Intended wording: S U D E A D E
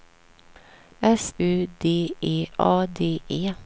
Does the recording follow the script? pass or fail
pass